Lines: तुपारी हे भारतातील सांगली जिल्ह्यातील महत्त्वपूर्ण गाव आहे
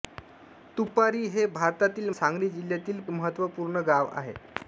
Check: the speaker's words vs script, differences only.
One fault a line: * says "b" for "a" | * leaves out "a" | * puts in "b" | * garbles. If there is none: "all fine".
all fine